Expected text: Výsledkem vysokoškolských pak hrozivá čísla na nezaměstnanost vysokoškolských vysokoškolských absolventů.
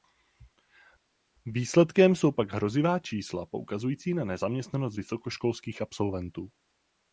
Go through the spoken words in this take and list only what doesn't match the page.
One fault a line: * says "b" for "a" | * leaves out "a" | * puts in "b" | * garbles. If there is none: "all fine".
* says "jsou" for "vysokoškolských"
* puts in "poukazující"
* leaves out "vysokoškolských"